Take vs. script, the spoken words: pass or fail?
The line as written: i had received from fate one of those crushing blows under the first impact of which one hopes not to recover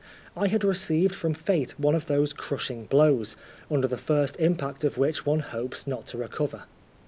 pass